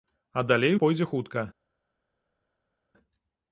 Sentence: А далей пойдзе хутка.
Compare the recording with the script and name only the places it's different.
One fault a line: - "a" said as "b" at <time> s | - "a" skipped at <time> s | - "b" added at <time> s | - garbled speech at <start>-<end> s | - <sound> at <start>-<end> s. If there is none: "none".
none